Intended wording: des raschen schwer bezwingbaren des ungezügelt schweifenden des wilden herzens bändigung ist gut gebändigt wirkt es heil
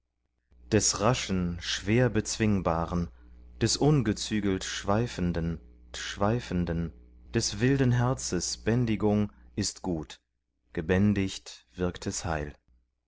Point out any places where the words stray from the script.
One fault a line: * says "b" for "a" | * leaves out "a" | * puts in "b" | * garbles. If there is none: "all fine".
* puts in "schweifenden"